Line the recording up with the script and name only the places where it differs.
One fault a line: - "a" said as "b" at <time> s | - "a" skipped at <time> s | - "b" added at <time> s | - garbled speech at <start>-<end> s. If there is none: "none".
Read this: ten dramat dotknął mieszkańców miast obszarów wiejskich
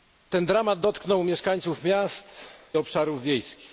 none